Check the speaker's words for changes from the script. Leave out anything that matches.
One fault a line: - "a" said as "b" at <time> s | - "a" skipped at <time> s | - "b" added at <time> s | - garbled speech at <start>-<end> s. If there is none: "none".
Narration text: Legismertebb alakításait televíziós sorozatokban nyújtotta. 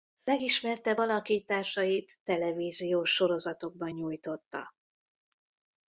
none